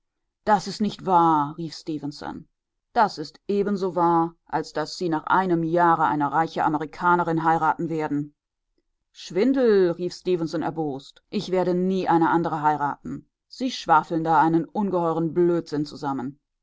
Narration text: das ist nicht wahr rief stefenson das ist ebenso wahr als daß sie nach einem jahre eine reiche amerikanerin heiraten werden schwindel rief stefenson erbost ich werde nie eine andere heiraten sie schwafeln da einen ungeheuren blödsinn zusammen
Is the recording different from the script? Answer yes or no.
no